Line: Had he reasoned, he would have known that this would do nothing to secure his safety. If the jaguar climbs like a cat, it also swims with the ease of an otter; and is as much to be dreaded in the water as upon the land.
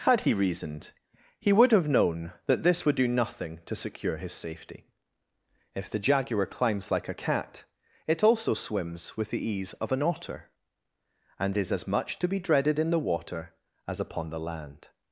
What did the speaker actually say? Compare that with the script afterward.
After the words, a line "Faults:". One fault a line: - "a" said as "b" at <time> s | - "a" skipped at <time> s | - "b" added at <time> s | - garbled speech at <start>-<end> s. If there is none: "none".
Had he reasoned, he would have known that this would do nothing to secure his safety. If the jaguar climbs like a cat, it also swims with the ease of an otter; and is as much to be dreaded in the water as upon the land.
Faults:
none